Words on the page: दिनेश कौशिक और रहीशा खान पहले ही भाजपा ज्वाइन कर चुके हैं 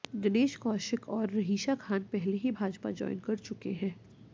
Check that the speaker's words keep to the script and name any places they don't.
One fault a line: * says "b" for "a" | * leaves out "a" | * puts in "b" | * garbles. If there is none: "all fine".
all fine